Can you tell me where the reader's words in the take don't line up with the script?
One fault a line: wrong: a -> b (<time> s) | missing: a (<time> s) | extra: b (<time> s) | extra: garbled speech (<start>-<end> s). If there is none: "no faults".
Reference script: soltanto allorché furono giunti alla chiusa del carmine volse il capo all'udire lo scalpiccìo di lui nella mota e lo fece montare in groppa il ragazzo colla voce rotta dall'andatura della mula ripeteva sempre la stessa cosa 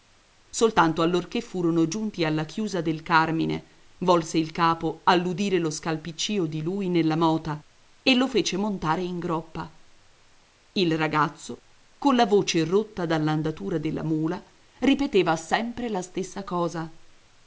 no faults